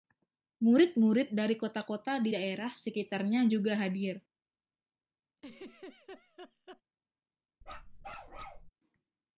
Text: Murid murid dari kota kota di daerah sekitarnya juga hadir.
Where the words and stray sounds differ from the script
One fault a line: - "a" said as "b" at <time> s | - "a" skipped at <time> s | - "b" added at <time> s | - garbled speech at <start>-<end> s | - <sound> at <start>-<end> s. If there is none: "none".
- laugh at 5.4-6.8 s
- bark at 7.6-8.7 s